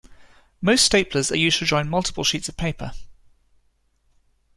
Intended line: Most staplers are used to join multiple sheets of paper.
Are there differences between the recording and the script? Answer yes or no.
no